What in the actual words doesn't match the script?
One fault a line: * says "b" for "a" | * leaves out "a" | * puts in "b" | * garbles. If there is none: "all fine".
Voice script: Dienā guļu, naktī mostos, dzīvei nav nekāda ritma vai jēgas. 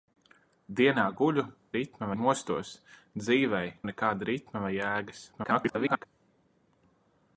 * says "ritma" for "naktī"
* leaves out "nav"
* garbles